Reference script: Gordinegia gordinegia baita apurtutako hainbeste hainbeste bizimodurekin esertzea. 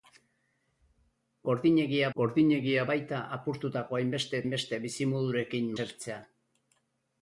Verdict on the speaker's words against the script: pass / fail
pass